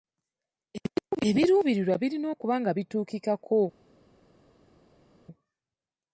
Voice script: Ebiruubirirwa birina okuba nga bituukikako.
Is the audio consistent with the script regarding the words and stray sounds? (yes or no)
yes